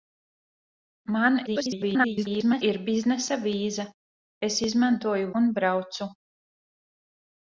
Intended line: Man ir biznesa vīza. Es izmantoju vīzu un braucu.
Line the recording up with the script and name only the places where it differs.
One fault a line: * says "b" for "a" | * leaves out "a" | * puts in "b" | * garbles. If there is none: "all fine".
* garbles
* leaves out "vīzu"